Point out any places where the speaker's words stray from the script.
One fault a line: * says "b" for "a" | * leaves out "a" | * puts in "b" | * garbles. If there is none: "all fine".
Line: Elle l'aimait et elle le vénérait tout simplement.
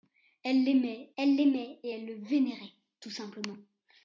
* puts in "elle l'aimait"